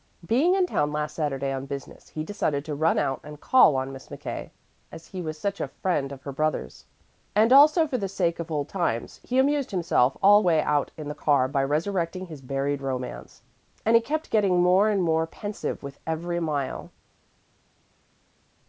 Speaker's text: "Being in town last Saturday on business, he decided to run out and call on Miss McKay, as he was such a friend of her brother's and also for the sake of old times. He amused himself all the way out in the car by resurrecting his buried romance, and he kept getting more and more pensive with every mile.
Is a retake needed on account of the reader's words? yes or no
yes